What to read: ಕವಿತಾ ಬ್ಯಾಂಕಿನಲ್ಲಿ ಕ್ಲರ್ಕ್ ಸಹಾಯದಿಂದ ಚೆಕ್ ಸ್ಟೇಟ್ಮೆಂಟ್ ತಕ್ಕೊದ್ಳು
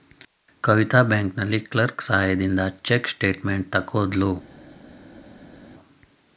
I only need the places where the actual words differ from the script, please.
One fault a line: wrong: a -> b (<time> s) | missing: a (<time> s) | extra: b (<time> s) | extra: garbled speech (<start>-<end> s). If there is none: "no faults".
no faults